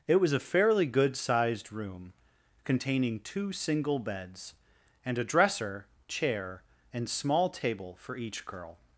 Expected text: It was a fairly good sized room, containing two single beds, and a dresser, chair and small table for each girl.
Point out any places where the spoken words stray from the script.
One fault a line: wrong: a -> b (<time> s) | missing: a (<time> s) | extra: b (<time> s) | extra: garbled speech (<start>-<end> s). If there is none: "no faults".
no faults